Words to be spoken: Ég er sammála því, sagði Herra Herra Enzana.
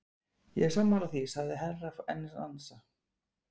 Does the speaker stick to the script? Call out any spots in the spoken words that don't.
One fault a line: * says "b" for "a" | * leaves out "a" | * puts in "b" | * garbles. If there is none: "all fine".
* leaves out "Herra"